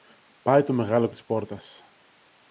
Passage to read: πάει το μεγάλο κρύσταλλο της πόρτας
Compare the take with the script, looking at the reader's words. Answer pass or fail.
fail